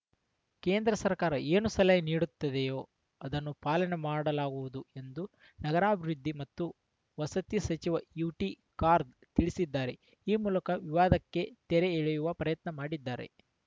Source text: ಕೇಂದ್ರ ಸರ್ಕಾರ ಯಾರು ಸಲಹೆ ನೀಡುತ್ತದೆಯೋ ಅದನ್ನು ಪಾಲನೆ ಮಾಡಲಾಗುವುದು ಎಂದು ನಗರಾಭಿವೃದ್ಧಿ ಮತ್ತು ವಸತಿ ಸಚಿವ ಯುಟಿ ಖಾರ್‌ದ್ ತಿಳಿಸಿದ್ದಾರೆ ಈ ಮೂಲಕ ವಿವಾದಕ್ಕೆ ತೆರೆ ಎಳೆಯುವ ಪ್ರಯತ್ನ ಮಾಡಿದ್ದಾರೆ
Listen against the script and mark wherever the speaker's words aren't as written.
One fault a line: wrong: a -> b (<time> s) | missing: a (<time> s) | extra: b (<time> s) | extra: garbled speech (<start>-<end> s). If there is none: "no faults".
wrong: ಯಾರು -> ಏನು (1.5 s)